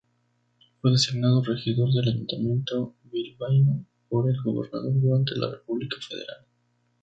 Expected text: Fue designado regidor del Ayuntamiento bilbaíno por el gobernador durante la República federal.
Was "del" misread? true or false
false